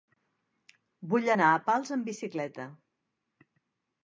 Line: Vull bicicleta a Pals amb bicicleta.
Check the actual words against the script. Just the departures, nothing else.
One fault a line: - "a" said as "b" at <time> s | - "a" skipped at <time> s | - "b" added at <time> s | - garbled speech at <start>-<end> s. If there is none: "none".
- "bicicleta" said as "anar" at 1.3 s